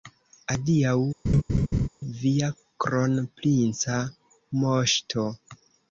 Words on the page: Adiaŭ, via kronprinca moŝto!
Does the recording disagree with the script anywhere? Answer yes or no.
no